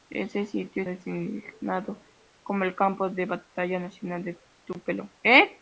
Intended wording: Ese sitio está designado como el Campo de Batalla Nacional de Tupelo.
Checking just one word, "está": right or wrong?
wrong